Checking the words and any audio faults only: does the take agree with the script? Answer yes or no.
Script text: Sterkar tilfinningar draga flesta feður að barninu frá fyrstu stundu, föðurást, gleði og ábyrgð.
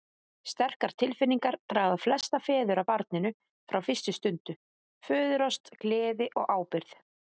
yes